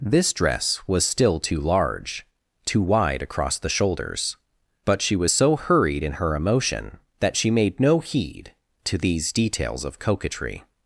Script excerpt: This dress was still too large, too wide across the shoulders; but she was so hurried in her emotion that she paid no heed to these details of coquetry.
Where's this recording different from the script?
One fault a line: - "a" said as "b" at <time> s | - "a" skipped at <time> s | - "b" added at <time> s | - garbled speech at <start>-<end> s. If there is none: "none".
- "paid" said as "made" at 7.5 s